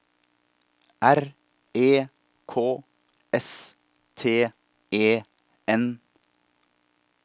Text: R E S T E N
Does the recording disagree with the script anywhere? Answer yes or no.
yes